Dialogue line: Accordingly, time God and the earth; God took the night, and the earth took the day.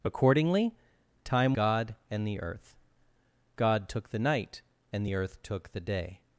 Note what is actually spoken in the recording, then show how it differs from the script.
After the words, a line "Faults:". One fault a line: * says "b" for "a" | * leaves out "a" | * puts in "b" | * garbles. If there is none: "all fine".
Accordingly, time God and the earth; God took the night, and the earth took the day.
Faults:
all fine